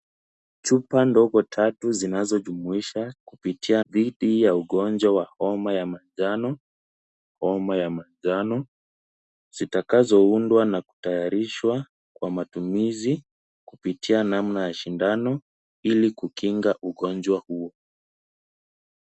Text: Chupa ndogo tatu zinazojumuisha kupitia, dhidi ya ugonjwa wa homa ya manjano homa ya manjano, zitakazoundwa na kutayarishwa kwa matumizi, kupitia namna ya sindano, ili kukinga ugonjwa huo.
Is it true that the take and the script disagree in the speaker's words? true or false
false